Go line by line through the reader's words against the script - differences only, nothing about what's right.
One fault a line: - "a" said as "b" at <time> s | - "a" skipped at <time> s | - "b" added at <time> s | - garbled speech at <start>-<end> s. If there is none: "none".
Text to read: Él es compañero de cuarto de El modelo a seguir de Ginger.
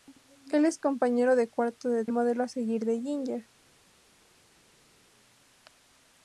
none